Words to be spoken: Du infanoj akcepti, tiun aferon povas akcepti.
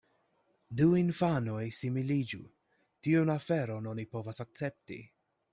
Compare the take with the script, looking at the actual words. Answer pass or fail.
fail